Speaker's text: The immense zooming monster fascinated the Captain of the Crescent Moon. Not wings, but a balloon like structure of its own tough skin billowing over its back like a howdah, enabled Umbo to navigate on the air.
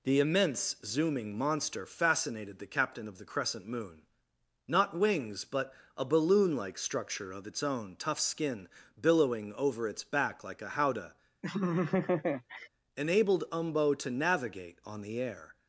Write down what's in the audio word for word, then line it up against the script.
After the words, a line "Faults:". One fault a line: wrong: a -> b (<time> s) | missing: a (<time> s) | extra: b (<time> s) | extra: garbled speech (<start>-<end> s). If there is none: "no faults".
The immense zooming monster fascinated the Captain of the Crescent Moon. Not wings, but a balloon like structure of its own tough skin billowing over its back like a howdah, enabled Umbo to navigate on the air.
Faults:
no faults